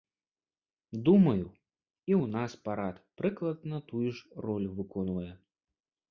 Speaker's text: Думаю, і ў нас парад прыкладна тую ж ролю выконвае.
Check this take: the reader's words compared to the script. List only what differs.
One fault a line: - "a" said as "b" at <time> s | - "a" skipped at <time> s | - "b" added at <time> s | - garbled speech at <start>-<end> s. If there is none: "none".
none